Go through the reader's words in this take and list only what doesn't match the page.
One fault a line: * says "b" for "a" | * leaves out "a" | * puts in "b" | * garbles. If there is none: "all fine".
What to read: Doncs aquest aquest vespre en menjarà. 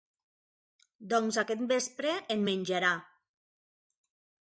* leaves out "aquest"